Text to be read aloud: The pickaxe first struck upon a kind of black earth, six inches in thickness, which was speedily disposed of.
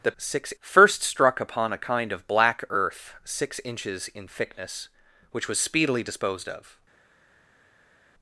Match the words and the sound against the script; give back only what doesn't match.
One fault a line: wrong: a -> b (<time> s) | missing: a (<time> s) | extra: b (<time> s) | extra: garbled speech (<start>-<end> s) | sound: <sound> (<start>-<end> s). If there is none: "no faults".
wrong: pickaxe -> six (0.2 s)